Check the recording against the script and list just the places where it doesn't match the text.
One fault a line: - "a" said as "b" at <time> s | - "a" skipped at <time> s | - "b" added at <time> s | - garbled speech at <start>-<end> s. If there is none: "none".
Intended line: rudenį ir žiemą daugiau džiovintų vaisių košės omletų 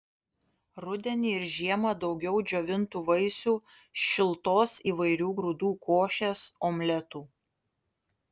- "šiltos įvairių grūdų" added at 4.1 s